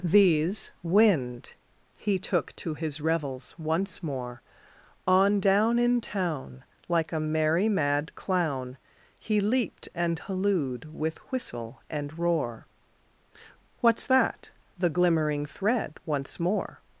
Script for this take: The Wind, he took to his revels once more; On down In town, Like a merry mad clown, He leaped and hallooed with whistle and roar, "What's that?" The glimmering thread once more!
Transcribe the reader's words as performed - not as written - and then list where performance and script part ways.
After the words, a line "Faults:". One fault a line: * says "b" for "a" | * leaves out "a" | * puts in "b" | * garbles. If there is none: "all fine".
These Wind, he took to his revels once more; On down In town, Like a merry mad clown, He leaped and hallooed with whistle and roar, "What's that?" The glimmering thread once more!
Faults:
* says "These" for "The"